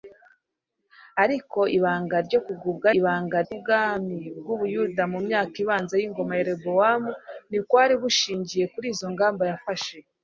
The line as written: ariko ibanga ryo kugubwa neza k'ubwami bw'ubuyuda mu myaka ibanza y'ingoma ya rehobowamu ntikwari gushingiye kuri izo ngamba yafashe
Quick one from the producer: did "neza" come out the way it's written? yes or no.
no